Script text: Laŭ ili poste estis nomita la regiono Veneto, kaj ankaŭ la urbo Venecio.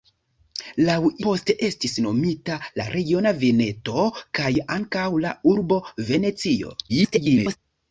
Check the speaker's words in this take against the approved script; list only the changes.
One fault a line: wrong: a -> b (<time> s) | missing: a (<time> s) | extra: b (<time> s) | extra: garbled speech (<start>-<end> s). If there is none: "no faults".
missing: ili (0.9 s)
extra: garbled speech (6.9-7.6 s)